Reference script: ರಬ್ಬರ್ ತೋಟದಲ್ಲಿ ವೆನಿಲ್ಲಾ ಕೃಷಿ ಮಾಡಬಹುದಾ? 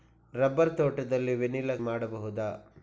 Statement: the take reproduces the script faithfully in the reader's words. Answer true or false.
false